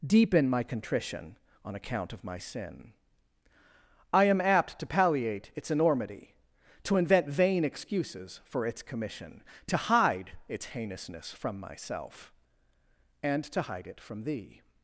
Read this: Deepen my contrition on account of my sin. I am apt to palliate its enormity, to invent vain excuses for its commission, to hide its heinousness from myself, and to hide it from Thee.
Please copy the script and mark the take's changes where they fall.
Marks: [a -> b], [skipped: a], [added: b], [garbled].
Deepen my contrition on account of my sin. I am apt to palliate its enormity, to invent vain excuses for its commission, to hide its heinousness from myself, and to hide it from Thee.